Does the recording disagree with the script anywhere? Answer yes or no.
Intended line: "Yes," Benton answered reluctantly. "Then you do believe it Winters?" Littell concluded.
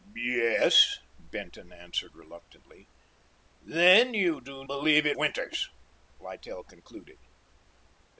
no